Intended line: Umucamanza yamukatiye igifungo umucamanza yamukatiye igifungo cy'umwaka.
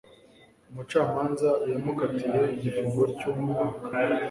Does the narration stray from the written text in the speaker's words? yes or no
yes